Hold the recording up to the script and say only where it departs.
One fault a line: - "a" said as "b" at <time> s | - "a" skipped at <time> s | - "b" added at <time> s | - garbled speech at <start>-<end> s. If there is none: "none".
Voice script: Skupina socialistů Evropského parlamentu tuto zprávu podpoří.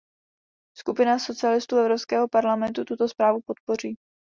none